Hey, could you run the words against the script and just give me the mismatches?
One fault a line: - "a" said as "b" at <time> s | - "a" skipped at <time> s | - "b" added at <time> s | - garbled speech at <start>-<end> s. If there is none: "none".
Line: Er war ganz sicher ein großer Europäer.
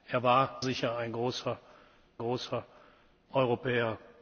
- "ganz" skipped at 0.6 s
- "großer" added at 2.2 s